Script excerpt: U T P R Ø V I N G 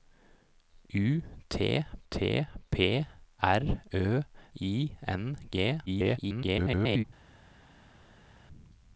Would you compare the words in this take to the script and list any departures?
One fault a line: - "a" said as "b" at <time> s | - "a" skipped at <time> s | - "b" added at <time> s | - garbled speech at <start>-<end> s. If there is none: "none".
- "T" added at 2.1 s
- "V" skipped at 4.2 s
- garbled speech at 5.9-7.0 s